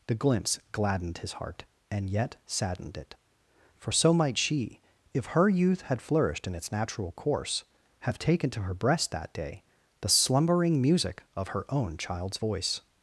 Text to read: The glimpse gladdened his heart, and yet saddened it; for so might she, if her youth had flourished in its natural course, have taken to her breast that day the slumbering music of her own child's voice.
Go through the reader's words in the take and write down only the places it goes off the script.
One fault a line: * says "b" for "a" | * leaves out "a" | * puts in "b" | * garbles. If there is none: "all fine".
all fine